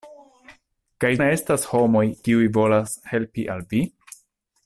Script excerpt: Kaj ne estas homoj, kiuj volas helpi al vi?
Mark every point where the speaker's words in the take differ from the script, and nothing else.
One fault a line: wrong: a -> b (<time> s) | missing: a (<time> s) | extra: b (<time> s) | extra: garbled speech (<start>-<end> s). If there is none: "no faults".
no faults